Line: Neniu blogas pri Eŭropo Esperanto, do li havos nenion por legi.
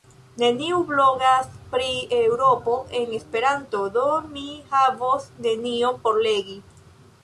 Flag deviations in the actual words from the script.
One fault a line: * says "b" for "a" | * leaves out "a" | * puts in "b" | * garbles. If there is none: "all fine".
* puts in "en"
* says "mi" for "li"